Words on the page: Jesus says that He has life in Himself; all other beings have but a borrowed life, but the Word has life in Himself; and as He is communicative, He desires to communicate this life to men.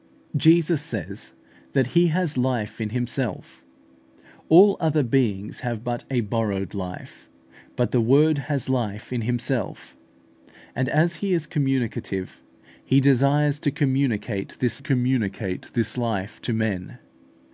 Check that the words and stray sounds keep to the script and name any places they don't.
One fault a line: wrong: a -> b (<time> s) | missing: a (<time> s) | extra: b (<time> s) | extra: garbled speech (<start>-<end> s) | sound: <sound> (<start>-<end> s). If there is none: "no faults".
extra: communicate this (14.8 s)